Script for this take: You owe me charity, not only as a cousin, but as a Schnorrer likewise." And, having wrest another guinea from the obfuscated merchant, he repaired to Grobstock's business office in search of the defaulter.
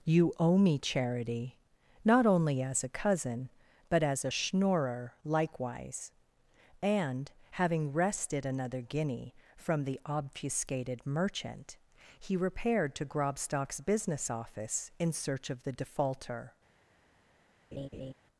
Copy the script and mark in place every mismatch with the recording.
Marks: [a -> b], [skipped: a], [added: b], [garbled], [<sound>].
You owe me charity, not only as a cousin, but as a Schnorrer likewise." And, having [wrest -> wrested] another guinea from the obfuscated merchant, he repaired to Grobstock's business office in search of the defaulter. [laugh]